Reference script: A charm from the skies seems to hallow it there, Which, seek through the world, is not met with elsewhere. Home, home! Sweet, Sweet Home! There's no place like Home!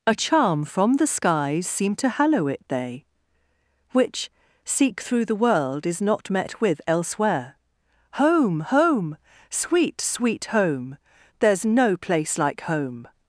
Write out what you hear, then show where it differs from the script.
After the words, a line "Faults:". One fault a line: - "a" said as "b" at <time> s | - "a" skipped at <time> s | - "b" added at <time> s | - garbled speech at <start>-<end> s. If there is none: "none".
A charm from the skies seem to hallow it they, Which, seek through the world, is not met with elsewhere. Home, home! Sweet, Sweet Home! There's no place like Home!
Faults:
- "seems" said as "seem" at 1.7 s
- "there" said as "they" at 2.7 s